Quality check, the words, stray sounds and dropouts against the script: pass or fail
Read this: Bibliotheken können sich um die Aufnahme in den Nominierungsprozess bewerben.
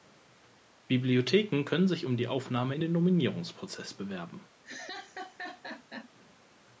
fail